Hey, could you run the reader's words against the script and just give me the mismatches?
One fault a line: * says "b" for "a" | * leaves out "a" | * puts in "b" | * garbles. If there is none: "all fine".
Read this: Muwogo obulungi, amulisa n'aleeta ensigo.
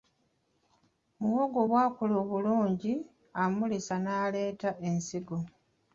* puts in "bw'akula"